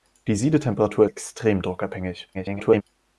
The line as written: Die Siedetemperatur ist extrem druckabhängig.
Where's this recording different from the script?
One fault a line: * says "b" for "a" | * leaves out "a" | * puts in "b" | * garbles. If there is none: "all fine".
* leaves out "ist"
* garbles